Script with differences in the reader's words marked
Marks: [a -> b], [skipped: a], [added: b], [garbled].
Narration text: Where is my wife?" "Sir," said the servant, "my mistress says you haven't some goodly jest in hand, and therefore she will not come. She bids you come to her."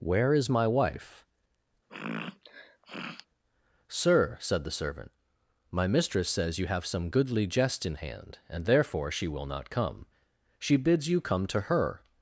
Where is my wife?" "Sir," said the servant, "my mistress says you [haven't -> have] some goodly jest in hand, and therefore she will not come. She bids you come to her."